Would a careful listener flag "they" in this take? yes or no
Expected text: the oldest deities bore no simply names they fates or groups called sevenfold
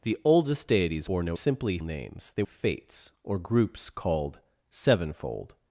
no